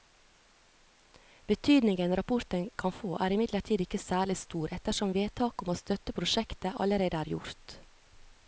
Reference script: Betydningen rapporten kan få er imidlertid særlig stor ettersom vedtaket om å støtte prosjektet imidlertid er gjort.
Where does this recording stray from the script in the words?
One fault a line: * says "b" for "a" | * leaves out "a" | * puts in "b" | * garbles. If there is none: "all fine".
* puts in "ikke"
* says "allerede" for "imidlertid"